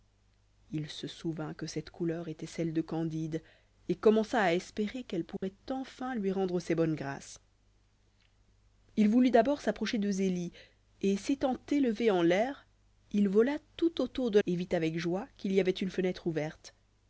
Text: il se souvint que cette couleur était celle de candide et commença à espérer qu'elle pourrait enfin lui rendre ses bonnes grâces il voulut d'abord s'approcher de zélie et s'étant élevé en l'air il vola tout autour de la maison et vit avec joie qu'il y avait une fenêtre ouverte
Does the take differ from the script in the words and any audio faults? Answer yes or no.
yes